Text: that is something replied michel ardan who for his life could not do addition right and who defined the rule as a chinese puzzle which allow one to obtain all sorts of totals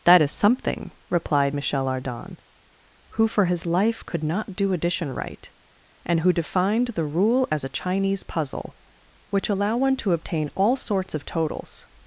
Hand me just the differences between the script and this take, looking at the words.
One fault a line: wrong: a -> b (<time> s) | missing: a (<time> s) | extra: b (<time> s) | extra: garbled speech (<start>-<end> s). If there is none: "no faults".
no faults